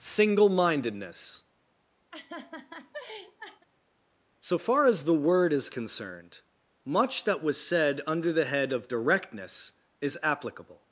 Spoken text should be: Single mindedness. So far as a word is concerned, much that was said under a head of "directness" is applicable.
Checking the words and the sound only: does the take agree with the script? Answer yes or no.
no